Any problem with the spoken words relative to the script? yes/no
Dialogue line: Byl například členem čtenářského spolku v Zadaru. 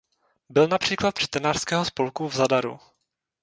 yes